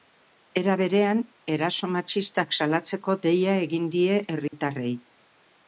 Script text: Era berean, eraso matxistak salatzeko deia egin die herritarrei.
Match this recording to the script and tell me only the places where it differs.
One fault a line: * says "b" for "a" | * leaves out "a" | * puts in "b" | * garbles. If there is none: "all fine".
all fine